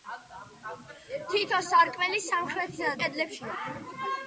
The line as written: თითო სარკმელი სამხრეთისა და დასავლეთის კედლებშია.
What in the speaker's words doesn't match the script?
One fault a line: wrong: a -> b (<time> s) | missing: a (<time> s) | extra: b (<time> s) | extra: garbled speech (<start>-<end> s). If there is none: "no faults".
missing: დასავლეთის (3.0 s)